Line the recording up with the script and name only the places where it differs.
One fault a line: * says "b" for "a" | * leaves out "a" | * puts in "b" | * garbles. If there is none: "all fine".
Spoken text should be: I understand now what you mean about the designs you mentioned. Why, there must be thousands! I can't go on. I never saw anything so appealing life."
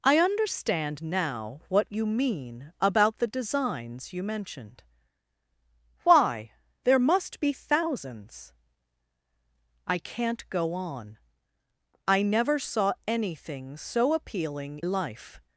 all fine